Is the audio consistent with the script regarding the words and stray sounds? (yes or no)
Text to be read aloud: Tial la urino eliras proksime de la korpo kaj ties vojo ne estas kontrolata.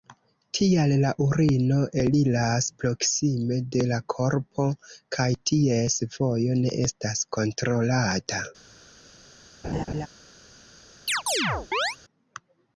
no